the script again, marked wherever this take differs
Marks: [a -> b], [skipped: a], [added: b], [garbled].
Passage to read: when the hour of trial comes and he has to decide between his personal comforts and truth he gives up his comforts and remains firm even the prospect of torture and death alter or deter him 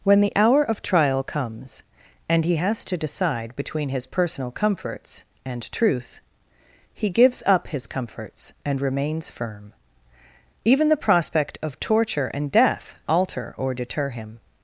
when the hour of trial comes and he has to decide between his personal comforts and truth he gives up his comforts and remains firm even the prospect of torture and death alter or deter him